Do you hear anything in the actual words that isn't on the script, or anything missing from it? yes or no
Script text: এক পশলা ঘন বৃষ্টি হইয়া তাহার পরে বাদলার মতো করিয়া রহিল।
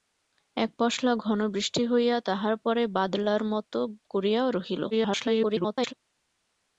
yes